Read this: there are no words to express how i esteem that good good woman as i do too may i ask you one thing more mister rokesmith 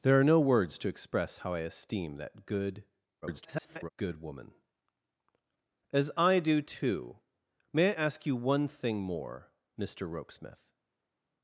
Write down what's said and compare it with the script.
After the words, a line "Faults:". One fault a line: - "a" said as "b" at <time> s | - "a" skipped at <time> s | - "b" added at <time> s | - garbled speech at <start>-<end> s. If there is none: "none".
there are no words to express how i esteem that good [garbled] good woman as i do too may i ask you one thing more mister rokesmith
Faults:
- garbled speech at 3.2-3.9 s